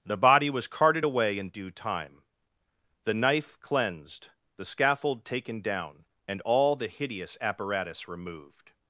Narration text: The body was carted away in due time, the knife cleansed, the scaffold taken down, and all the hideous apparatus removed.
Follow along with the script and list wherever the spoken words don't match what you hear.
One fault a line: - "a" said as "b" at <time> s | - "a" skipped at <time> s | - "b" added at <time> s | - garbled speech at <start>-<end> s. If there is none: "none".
none